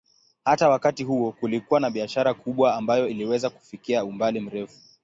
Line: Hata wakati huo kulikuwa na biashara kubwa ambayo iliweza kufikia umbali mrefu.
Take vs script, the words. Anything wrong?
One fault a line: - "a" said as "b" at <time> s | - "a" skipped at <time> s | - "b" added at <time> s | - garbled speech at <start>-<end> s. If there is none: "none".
none